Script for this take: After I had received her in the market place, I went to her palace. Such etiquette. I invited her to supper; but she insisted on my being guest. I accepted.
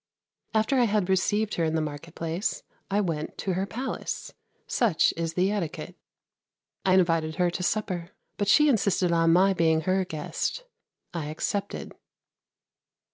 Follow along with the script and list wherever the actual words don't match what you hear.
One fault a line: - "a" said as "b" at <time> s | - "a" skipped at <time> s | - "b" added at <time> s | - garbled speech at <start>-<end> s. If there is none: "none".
- "is the" added at 5.2 s
- "her" added at 9.8 s